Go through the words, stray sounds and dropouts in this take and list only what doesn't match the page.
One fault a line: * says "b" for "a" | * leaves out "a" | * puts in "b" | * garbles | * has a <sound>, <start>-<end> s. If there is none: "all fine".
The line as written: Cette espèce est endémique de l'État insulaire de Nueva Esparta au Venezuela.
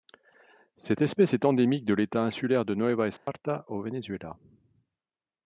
* has a dropout, 3.2-3.3 s